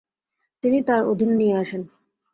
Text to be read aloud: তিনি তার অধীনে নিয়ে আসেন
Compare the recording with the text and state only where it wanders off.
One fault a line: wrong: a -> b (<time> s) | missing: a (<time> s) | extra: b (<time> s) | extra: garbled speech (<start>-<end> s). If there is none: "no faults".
no faults